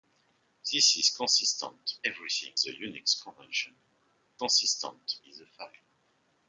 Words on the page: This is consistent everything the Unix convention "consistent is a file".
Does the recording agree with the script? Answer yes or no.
yes